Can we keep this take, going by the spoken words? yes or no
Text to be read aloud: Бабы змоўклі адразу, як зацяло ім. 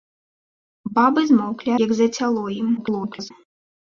no